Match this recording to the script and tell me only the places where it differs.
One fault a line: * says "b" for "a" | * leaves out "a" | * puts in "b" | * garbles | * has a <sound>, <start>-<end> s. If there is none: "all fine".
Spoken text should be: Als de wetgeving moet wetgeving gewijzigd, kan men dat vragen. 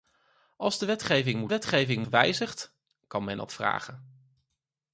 all fine